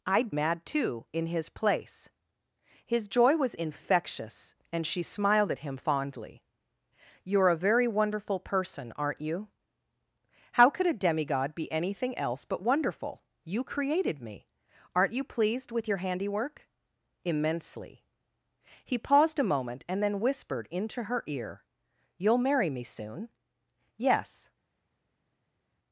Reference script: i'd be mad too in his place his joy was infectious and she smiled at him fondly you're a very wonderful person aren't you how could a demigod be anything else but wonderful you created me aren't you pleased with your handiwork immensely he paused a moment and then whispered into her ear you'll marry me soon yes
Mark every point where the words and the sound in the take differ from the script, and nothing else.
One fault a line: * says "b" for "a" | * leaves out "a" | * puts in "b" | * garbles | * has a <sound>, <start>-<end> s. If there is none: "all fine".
* leaves out "be"